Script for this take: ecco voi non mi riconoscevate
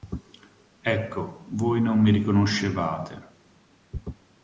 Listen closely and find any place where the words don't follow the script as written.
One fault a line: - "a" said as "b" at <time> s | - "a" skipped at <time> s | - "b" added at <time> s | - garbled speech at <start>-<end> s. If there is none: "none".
none